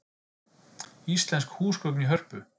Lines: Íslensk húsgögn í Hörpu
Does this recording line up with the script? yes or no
yes